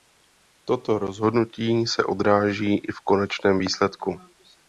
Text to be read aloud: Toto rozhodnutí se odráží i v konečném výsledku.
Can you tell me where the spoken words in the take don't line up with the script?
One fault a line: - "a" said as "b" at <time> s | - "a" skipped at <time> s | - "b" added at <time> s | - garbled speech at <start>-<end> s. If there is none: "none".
none